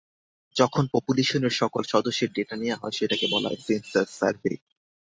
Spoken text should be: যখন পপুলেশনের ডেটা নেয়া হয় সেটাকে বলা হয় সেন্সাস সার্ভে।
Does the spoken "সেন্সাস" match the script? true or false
true